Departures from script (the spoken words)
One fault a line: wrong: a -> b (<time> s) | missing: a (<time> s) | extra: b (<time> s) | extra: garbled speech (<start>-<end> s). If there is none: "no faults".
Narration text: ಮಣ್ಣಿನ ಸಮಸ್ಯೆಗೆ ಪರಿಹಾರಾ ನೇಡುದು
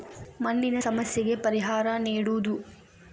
no faults